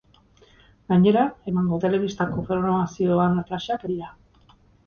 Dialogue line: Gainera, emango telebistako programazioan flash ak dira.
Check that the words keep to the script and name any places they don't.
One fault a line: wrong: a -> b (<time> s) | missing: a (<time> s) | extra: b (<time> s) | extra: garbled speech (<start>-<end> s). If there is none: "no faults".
no faults